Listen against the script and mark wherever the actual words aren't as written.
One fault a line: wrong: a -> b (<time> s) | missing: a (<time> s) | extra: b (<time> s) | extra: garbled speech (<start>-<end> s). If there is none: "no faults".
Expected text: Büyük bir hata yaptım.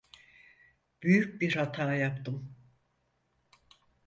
no faults